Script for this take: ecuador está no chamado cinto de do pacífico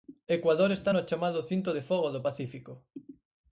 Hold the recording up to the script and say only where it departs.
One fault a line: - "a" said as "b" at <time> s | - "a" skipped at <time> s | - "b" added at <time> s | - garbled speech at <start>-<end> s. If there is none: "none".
- "fogo" added at 1.8 s